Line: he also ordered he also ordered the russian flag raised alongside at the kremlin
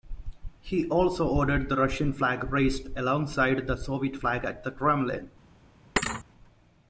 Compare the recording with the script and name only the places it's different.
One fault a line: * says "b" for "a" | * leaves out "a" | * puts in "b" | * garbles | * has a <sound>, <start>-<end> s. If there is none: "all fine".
* leaves out "he also ordered"
* puts in "the soviet flag"
* has a thud, 6.0-6.2 s